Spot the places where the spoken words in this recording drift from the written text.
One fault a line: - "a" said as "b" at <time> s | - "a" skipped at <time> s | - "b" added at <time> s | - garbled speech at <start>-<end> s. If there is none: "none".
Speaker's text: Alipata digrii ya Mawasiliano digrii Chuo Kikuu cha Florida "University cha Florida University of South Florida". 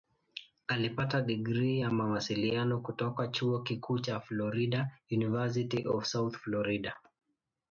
- "digrii" said as "kutoka" at 2.8 s
- "cha Florida University" skipped at 5.9 s